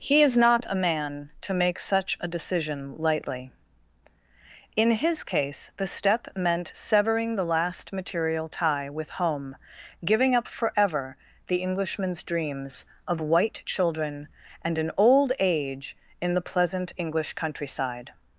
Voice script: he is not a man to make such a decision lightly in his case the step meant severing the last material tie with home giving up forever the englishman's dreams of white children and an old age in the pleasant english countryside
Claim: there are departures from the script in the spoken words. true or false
false